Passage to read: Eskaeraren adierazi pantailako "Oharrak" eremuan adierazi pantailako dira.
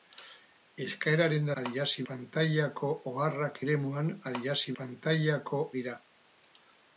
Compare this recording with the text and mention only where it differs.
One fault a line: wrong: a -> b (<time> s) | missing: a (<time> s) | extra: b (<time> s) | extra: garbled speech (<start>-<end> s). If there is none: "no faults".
no faults